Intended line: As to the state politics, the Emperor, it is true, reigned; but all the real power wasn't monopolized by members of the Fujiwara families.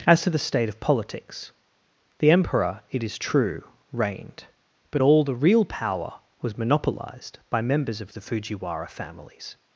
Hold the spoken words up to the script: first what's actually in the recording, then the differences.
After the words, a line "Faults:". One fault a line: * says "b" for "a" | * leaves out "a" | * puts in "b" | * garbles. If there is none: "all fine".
As to the state of politics, the Emperor, it is true, reigned; but all the real power was monopolized by members of the Fujiwara families.
Faults:
* puts in "of"
* says "was" for "wasn't"